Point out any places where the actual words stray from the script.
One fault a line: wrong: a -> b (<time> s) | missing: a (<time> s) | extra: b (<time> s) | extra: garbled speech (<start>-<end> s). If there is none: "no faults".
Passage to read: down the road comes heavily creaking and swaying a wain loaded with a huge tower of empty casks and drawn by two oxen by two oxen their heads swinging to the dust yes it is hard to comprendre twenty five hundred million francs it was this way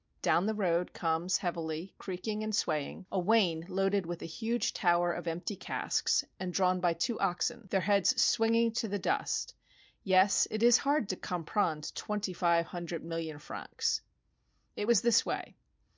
missing: by two oxen (7.7 s)